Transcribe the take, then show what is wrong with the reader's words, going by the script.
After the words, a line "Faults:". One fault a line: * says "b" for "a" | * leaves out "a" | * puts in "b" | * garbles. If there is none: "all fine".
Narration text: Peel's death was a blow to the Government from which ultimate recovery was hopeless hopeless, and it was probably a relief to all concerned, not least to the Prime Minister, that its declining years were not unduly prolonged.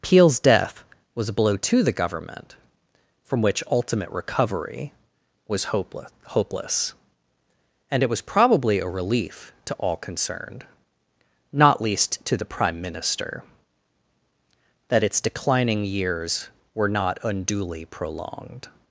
Peel's death was a blow to the Government from which ultimate recovery was hopeless hopeless, and it was probably a relief to all concerned, not least to the Prime Minister, that its declining years were not unduly prolonged.
Faults:
all fine